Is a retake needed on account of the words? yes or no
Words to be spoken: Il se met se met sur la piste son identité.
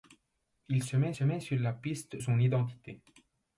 no